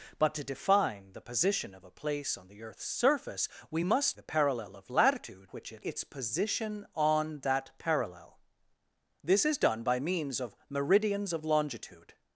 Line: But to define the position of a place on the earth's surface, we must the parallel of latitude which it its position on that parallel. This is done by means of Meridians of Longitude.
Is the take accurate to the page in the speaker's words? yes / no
yes